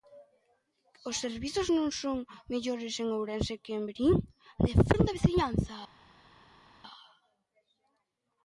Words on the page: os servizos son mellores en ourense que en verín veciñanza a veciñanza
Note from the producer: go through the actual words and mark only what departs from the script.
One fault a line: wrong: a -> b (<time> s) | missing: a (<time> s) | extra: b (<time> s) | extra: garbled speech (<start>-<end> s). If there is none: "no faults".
extra: non (1.8 s)
wrong: veciñanza -> defende (4.7 s)